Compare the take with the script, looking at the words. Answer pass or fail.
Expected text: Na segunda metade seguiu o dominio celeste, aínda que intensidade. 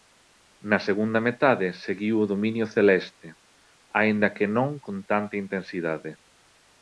fail